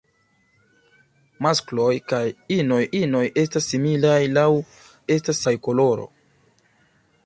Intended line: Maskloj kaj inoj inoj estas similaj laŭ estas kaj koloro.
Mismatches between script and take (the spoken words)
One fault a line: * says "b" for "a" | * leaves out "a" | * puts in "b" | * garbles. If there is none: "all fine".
all fine